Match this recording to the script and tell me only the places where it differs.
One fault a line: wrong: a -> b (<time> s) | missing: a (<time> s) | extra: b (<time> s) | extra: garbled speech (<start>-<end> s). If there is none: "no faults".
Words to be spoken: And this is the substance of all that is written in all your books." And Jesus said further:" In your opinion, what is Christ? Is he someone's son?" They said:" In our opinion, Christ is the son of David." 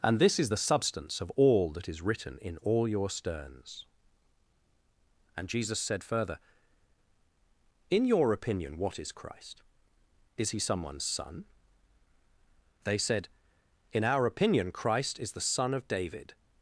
wrong: books -> sterns (3.1 s)